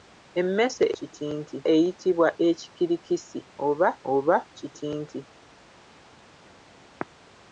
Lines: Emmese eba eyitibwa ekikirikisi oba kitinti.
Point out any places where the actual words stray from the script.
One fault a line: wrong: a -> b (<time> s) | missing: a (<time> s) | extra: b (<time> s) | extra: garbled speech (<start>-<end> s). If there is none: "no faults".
wrong: eba -> kitinti (1.0 s)
extra: oba (4.1 s)